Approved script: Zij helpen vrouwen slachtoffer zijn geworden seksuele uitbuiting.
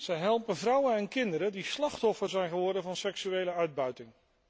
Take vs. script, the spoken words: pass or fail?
fail